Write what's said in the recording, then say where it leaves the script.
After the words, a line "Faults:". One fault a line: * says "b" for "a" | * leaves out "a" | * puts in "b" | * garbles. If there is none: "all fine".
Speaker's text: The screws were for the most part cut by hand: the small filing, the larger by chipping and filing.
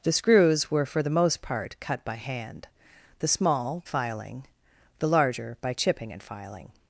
The screws were for the most part cut by hand: the small filing, the larger by chipping and filing.
Faults:
all fine